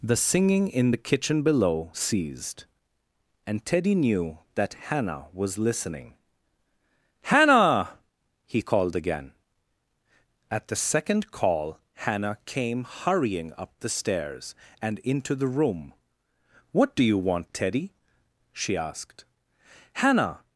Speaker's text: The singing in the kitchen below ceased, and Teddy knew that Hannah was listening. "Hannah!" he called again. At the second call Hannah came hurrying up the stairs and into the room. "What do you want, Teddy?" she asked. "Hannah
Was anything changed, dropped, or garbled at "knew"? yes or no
no